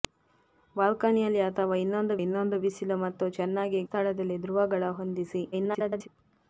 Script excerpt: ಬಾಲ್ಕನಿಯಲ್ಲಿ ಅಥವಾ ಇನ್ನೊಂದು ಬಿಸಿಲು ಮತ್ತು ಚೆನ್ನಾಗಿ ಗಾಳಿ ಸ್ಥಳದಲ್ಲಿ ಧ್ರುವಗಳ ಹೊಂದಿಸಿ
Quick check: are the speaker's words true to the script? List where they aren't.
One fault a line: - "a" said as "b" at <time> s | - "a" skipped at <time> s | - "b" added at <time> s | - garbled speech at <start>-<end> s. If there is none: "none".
- "ಇನ್ನೊಂದು" added at 2.2 s
- "ಗಾಳಿ" skipped at 3.8 s
- garbled speech at 5.5-6.1 s